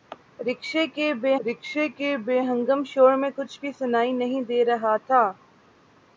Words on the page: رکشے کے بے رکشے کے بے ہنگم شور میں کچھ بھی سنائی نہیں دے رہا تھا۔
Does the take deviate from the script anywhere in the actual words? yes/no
no